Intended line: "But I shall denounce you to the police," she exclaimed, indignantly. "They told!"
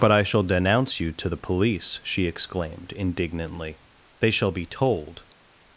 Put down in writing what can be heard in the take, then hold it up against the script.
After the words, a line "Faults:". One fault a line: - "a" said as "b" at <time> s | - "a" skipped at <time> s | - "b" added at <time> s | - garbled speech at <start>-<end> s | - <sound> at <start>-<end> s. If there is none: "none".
"But I shall denounce you to the police," she exclaimed, indignantly. "They shall be told!"
Faults:
- "shall be" added at 4.3 s